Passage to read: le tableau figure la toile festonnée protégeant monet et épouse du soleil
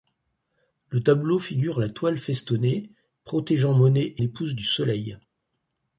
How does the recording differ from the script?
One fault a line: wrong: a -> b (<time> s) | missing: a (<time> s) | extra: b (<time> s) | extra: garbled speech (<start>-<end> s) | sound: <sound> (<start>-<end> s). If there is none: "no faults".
no faults